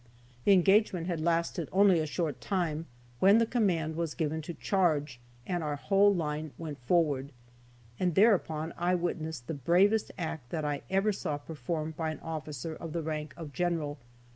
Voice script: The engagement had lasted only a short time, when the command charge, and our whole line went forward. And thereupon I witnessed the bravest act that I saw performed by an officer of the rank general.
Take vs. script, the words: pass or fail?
fail